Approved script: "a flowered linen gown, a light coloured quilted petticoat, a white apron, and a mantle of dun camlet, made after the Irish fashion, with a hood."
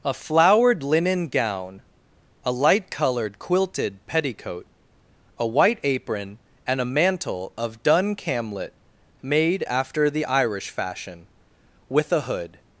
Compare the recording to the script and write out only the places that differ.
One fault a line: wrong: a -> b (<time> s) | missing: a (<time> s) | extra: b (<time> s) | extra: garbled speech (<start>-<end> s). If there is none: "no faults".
no faults